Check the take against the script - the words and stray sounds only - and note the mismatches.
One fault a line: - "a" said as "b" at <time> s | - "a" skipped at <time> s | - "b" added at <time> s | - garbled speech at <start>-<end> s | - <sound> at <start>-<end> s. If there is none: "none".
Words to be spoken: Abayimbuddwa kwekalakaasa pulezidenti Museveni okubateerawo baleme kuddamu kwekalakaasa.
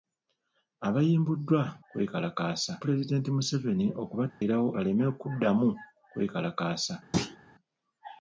- dropout at 4.3-4.4 s
- thud at 7.1-7.4 s